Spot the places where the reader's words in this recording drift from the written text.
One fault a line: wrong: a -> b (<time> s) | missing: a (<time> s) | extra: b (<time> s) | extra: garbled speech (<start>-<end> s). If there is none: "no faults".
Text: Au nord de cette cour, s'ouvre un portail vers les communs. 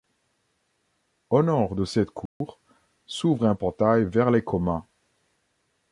no faults